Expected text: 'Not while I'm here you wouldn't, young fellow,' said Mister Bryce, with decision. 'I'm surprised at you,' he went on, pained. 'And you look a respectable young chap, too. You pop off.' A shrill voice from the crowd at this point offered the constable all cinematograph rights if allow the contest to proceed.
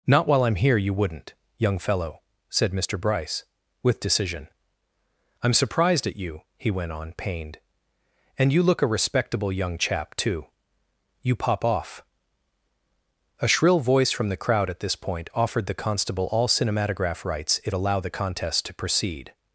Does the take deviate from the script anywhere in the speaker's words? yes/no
no